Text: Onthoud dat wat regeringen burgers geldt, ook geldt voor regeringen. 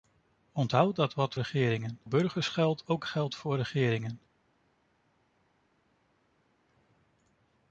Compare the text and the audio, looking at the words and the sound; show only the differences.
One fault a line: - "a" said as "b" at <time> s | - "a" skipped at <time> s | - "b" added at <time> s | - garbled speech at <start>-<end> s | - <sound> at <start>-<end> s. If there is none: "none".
none